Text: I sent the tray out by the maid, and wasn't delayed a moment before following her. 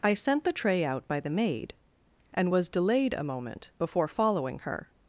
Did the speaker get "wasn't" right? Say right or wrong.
wrong